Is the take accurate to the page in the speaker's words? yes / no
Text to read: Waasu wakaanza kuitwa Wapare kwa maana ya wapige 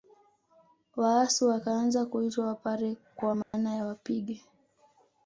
yes